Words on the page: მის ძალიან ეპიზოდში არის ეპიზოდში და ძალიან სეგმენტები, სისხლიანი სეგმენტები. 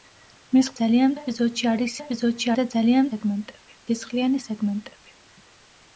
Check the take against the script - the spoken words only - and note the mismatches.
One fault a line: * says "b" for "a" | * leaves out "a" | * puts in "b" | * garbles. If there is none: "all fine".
all fine